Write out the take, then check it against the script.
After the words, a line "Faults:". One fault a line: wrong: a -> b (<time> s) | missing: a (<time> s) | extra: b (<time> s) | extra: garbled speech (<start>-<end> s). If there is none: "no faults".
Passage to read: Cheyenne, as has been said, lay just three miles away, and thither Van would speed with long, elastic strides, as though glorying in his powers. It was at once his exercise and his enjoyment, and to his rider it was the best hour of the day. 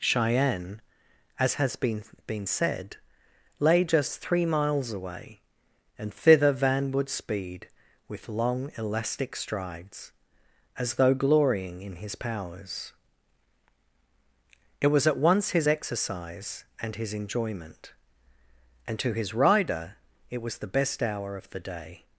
Cheyenne, as has been been said, lay just three miles away, and thither Van would speed with long, elastic strides, as though glorying in his powers. It was at once his exercise and his enjoyment, and to his rider it was the best hour of the day.
Faults:
extra: been (2.3 s)